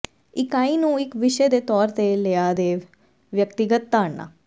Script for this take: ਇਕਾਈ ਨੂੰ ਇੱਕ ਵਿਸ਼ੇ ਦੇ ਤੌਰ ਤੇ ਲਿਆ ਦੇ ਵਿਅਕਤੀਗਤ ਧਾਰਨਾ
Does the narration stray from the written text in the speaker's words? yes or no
no